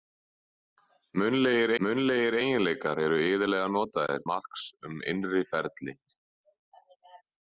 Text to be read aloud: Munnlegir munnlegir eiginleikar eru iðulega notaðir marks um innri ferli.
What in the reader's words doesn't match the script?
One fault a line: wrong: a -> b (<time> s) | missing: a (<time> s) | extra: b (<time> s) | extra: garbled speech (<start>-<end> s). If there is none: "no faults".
no faults